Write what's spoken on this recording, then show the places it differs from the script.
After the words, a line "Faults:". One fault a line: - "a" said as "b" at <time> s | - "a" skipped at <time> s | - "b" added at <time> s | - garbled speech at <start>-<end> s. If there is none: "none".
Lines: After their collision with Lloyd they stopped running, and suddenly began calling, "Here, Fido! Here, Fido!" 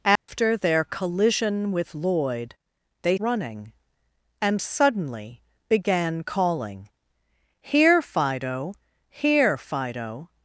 After their collision with Lloyd they running, and suddenly began calling, "Here, Fido! Here, Fido!"
Faults:
- "stopped" skipped at 3.2 s